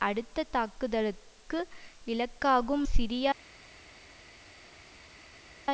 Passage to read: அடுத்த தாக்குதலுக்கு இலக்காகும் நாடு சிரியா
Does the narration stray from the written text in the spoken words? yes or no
yes